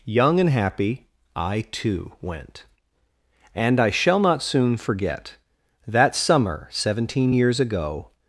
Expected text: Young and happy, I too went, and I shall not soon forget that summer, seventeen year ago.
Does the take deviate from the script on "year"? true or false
true